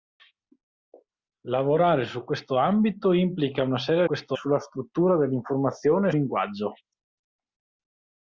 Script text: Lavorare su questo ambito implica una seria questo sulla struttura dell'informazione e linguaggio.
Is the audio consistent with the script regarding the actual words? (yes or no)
yes